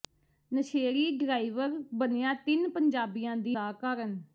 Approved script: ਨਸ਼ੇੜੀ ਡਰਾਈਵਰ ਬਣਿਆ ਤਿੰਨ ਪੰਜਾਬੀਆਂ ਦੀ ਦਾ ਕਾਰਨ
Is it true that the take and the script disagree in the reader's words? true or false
false